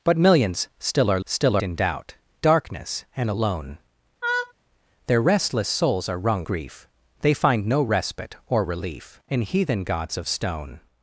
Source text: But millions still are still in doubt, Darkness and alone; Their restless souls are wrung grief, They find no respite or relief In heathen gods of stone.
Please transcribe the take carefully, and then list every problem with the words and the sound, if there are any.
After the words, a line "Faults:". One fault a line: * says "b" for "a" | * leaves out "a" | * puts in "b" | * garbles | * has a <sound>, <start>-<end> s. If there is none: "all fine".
But millions still are still in doubt, Darkness and alone; Their restless souls are wrung grief, They find no respite or relief In heathen gods of stone.
Faults:
* has a laugh, 4.2-4.5 s